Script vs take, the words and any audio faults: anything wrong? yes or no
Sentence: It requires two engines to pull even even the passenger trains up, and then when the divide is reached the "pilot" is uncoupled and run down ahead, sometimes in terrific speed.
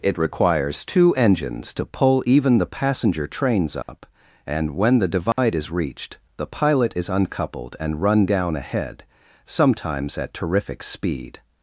yes